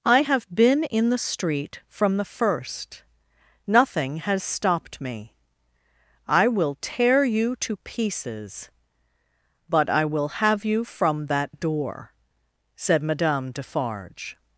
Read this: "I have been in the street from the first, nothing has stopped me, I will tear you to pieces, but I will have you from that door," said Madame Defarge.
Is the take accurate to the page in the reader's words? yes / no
yes